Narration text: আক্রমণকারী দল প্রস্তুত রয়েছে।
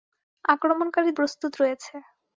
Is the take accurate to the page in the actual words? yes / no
no